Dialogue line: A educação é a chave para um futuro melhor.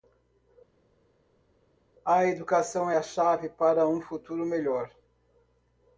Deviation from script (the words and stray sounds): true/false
false